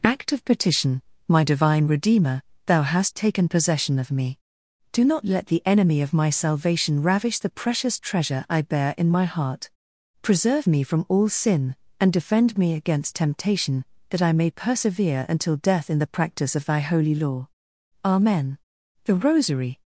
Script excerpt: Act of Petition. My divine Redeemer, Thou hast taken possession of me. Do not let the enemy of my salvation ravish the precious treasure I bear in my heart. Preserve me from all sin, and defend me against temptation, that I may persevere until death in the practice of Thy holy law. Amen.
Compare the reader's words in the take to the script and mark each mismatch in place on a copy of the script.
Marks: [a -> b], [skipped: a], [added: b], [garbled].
Act of Petition. My divine Redeemer, Thou hast taken possession of me. Do not let the enemy of my salvation ravish the precious treasure I bear in my heart. Preserve me from all sin, and defend me against temptation, that I may persevere until death in the practice of Thy holy law. Amen. [added: THE ROSARY]